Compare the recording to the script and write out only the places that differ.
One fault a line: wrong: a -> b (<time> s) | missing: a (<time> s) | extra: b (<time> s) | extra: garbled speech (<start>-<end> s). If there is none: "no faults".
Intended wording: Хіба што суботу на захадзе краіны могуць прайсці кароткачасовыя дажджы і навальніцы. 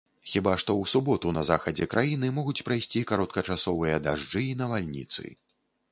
extra: ў (0.8 s)